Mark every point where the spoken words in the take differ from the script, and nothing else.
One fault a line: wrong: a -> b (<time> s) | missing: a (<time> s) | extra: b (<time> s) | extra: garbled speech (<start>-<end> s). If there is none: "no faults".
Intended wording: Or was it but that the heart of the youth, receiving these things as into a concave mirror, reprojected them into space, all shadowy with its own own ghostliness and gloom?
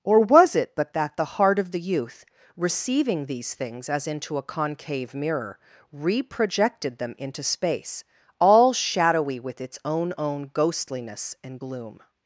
no faults